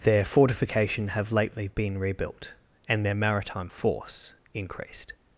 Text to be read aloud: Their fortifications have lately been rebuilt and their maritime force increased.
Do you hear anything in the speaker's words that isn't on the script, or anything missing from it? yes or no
yes